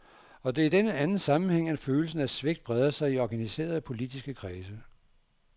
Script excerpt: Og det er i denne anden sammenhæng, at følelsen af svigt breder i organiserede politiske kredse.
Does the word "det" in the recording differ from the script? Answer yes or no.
no